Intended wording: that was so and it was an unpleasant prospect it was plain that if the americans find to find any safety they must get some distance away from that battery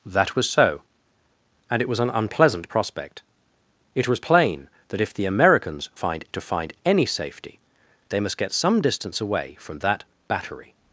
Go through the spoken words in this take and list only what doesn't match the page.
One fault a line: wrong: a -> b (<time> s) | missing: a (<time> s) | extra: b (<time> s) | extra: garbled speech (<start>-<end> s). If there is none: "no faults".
no faults